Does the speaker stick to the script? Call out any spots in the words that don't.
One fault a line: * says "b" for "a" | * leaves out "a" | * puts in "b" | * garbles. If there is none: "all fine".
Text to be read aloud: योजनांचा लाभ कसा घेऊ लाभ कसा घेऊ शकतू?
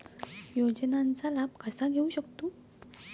* leaves out "लाभ कसा घेऊ"